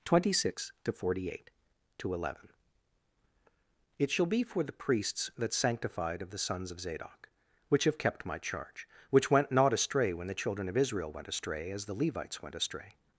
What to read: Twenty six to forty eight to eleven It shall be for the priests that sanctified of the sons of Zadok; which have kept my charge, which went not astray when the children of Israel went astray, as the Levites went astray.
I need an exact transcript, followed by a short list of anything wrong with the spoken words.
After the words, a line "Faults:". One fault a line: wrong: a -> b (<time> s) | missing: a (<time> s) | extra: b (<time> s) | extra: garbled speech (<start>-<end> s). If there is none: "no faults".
Twenty six to forty eight to eleven It shall be for the priests that sanctified of the sons of Zadok; which have kept my charge, which went not astray when the children of Israel went astray, as the Levites went astray.
Faults:
no faults